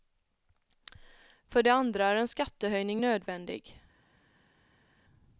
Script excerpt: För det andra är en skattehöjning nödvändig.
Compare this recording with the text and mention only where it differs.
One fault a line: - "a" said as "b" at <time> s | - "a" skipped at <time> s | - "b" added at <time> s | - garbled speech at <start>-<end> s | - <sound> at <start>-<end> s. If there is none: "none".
none